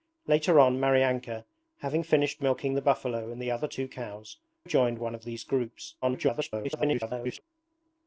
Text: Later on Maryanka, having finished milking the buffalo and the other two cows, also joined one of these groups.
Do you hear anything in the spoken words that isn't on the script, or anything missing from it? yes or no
yes